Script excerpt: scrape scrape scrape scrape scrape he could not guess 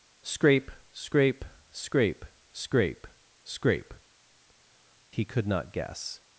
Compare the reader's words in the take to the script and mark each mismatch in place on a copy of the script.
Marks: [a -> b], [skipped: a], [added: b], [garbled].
scrape scrape scrape scrape scrape he could not guess